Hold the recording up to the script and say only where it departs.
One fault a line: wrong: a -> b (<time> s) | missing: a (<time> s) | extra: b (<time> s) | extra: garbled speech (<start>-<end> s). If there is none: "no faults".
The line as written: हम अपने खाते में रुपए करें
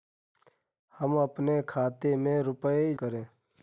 no faults